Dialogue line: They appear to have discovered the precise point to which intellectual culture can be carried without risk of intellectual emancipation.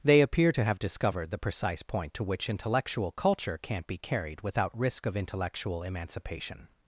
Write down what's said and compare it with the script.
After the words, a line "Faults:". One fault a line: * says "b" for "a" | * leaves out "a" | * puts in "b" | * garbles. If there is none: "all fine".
They appear to have discovered the precise point to which intellectual culture can't be carried without risk of intellectual emancipation.
Faults:
* says "can't" for "can"